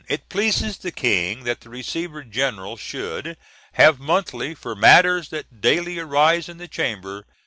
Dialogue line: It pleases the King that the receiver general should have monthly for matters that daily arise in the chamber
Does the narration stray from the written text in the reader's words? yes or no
no